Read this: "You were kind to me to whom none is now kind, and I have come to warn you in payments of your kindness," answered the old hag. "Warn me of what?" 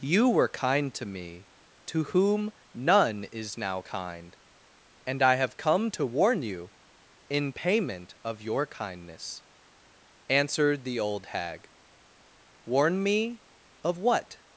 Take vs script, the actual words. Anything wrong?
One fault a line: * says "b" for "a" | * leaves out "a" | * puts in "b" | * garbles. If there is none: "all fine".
* says "payment" for "payments"